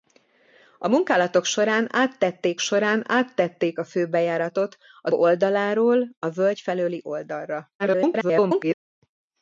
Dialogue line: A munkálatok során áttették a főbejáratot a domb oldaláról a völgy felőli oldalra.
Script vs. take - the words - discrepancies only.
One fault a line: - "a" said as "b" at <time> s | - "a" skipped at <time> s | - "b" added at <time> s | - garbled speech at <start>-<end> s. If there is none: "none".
- "során áttették" added at 2.6 s
- "domb" skipped at 5.1 s
- garbled speech at 7.8-8.7 s